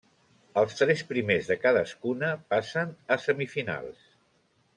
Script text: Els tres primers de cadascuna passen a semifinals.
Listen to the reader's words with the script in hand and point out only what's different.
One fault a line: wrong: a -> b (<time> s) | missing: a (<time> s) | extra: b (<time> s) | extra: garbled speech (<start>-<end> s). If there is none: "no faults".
no faults